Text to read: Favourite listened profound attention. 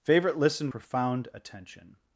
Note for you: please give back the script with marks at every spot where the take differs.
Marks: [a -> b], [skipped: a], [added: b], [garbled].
Favourite listened profound attention.